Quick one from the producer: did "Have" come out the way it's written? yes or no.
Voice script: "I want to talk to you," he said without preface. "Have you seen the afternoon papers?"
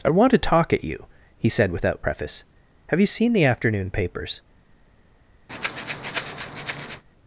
yes